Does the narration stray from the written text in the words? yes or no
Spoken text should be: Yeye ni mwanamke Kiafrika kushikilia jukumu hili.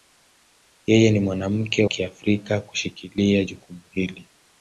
no